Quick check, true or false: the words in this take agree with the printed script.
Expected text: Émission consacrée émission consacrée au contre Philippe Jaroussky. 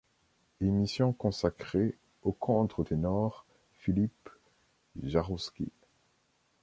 false